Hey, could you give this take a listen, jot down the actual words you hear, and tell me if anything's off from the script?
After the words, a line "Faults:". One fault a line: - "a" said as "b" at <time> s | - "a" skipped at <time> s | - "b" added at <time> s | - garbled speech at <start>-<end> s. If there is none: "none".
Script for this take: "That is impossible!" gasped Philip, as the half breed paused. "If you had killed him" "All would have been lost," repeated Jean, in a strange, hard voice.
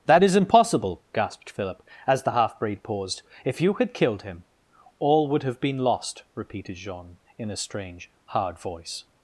"That is impossible!" gasped Philip, as the half breed paused. "If you had killed him" "All would have been lost," repeated Jean, in a strange, hard voice.
Faults:
none